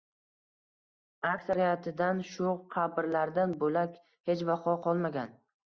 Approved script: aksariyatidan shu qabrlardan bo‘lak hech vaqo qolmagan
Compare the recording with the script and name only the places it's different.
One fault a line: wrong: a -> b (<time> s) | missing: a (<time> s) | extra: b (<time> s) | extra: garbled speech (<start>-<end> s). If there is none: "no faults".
no faults